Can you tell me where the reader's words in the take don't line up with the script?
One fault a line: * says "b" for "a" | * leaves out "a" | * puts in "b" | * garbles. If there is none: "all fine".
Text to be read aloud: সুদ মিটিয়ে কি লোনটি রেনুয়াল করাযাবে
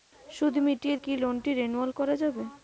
all fine